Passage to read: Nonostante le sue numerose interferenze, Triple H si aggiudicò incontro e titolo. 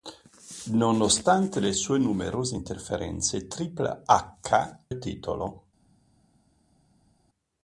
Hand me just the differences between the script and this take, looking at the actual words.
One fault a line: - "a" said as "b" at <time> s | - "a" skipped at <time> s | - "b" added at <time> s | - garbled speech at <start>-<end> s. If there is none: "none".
- "si aggiudicò incontro" skipped at 4.8 s